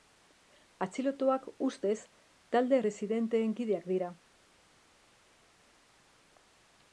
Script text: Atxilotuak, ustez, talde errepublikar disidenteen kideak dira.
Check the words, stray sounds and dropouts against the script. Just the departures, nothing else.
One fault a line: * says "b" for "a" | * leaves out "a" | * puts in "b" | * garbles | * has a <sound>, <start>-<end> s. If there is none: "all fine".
* leaves out "errepublikar"